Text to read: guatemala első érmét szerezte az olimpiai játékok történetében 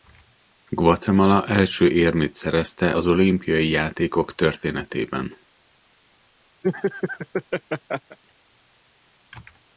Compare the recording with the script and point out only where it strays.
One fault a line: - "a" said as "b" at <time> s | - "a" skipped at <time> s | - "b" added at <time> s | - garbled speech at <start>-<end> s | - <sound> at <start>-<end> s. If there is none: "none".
- laugh at 6.6-8.2 s